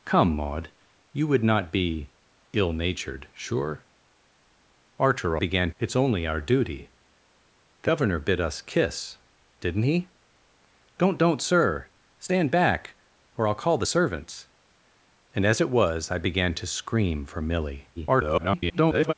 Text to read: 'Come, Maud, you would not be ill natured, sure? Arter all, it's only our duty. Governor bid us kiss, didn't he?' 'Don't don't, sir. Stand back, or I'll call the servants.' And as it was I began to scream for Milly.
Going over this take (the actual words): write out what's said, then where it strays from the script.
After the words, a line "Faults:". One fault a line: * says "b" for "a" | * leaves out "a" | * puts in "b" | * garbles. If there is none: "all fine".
'Come, Maud, you would not be ill natured, sure? Arter began, it's only our duty. Governor bid us kiss, didn't he?' 'Don't don't, sir. Stand back, or I'll call the servants.' And as it was I began to scream for Milly. [garbled]
Faults:
* says "began" for "all"
* garbles